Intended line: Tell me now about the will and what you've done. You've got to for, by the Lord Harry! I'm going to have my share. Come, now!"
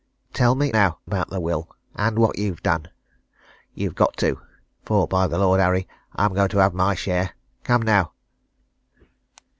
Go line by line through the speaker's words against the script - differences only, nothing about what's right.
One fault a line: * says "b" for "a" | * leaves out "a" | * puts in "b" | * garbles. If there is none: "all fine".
all fine